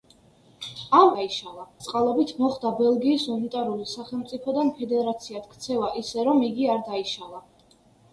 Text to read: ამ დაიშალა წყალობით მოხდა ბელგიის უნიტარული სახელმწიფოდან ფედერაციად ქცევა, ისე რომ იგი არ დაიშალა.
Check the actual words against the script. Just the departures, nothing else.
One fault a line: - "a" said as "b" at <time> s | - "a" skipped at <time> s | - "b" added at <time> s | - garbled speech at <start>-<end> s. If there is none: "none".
none